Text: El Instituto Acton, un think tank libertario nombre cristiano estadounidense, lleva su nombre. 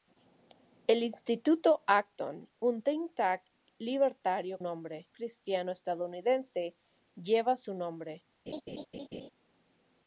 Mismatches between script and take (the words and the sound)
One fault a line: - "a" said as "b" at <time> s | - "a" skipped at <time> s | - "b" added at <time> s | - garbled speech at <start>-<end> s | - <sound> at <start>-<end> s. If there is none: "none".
- laugh at 8.5-9.3 s